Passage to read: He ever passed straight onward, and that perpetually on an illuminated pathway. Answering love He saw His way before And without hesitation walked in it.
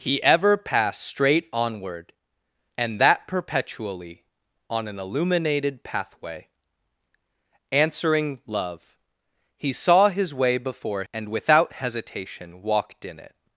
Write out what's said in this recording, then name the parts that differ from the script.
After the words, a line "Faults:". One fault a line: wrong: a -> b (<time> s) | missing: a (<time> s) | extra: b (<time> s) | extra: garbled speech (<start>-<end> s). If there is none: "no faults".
He ever passed straight onward, and that perpetually on an illuminated pathway. Answering love He saw His way before And without hesitation walked in it.
Faults:
no faults